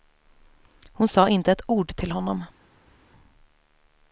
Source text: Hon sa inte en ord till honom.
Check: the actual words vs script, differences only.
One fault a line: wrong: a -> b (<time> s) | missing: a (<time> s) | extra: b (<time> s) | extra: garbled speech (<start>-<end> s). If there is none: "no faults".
wrong: en -> ett (1.5 s)